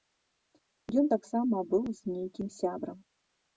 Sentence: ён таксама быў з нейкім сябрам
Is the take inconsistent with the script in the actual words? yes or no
no